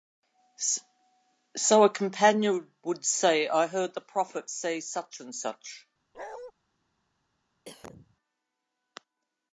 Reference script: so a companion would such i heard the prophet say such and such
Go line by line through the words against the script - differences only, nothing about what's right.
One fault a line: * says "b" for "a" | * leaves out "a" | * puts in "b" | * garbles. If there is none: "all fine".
* says "say" for "such"